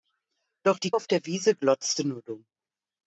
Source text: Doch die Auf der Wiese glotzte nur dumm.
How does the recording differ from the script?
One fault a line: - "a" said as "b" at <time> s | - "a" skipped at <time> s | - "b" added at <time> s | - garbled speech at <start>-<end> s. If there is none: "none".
none